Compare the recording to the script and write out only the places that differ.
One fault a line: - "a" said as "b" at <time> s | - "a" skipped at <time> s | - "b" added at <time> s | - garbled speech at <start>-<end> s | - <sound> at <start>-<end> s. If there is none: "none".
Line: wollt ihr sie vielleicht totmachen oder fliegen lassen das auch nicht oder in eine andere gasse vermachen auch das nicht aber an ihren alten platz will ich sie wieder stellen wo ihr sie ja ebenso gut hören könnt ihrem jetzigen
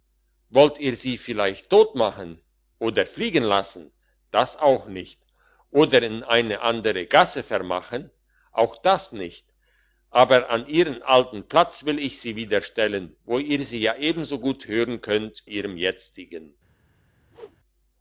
- whoosh at 17.3-17.6 s